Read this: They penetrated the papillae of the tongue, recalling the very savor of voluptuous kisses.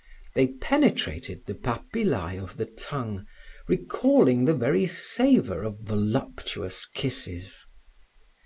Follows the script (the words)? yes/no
yes